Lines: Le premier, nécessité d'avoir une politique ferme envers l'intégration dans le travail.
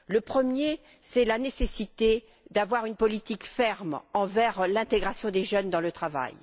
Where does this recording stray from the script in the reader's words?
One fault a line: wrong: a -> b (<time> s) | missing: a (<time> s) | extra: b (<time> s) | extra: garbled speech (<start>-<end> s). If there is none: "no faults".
extra: c'est la (1.0 s)
extra: des jeunes (5.3 s)